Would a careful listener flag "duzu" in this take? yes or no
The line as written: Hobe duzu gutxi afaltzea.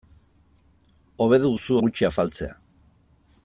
no